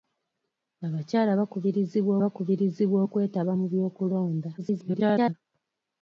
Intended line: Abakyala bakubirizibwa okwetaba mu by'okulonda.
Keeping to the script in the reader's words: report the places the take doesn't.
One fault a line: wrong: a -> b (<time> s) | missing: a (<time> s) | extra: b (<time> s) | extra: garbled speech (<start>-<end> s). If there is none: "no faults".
extra: bakubirizibwa (2.2 s)
extra: garbled speech (4.6-5.3 s)